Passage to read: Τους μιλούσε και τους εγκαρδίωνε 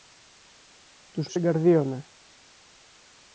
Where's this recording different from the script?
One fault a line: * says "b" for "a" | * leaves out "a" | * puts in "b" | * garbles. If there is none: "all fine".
* leaves out "μιλούσε και"